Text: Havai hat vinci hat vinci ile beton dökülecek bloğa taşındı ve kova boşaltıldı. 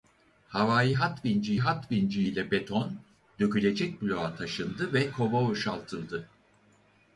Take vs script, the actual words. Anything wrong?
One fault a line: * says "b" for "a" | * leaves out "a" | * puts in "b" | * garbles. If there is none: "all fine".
all fine